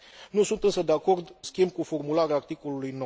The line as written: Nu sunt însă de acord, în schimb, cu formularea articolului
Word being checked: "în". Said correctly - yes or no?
no